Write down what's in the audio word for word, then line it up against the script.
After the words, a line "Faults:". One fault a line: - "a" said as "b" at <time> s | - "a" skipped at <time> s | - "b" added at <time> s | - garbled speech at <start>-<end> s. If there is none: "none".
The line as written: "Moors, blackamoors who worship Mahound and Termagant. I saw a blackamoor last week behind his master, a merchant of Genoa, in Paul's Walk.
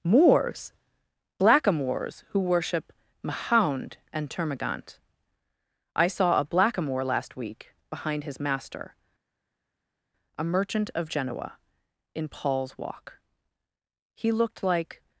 "Moors, blackamoors who worship Mahound and Termagant. I saw a blackamoor last week behind his master, a merchant of Genoa, in Paul's Walk. He looked like
Faults:
- "He looked like" added at 14.1 s